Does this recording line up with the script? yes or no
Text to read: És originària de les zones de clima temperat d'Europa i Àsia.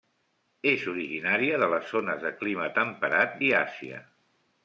no